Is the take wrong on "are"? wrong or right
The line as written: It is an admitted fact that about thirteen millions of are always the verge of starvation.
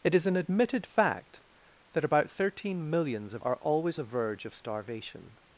right